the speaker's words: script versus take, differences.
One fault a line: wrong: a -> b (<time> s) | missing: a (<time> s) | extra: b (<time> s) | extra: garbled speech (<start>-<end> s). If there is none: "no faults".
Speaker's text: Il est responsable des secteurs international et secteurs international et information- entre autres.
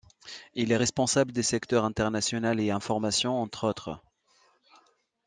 missing: secteurs international et (2.7 s)